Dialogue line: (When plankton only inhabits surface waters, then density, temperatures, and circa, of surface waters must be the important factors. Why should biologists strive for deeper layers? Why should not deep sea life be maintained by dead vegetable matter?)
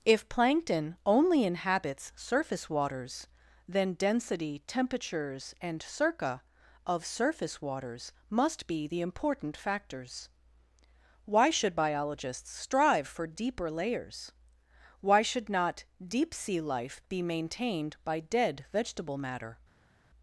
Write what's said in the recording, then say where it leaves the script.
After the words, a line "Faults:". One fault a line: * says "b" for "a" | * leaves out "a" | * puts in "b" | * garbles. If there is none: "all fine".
(If plankton only inhabits surface waters, then density, temperatures, and circa, of surface waters must be the important factors. Why should biologists strive for deeper layers? Why should not deep sea life be maintained by dead vegetable matter?)
Faults:
* says "If" for "When"